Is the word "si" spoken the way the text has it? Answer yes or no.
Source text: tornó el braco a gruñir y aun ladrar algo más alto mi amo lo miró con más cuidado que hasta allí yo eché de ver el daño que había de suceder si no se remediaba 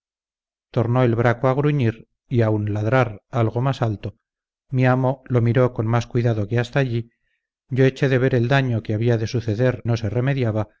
no